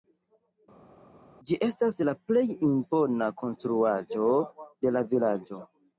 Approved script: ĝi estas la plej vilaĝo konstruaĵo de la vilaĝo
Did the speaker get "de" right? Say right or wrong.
right